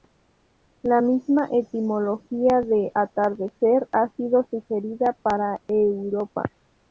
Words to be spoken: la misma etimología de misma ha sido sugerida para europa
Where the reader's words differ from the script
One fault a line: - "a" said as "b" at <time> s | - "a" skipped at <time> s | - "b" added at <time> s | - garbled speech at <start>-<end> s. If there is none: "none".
- "misma" said as "atardecer" at 2.9 s